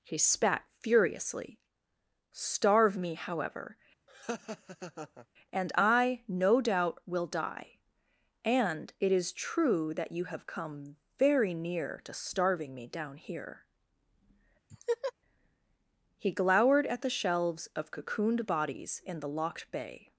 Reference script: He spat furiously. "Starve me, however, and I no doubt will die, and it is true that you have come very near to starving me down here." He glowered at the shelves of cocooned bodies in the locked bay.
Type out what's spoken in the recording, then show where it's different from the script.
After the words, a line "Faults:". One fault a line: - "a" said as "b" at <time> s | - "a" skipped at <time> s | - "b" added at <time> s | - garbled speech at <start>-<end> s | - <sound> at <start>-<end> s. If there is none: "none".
He spat furiously. "Starve me, however, and I no doubt will die, and it is true that you have come very near to starving me down here." He glowered at the shelves of cocooned bodies in the locked bay.
Faults:
- laugh at 4.1-5.3 s
- laugh at 14.7-15.1 s